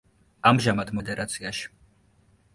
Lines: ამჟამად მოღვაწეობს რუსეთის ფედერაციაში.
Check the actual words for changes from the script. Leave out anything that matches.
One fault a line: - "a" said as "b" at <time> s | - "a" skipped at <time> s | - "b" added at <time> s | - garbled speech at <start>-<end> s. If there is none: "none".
- "მოღვაწეობს რუსეთის" skipped at 0.9 s